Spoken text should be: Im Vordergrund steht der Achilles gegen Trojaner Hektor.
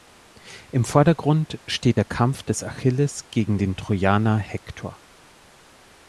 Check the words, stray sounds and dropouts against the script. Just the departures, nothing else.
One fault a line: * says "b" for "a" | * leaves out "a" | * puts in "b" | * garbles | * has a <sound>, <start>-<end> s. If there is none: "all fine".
* puts in "Kampf des"
* puts in "den"